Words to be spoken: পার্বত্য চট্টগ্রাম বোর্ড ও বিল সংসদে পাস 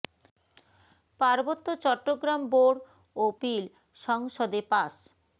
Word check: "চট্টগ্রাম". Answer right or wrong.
right